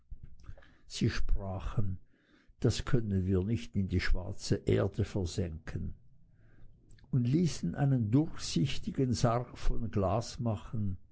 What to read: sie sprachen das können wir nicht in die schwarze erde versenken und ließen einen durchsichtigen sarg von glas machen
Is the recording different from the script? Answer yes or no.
no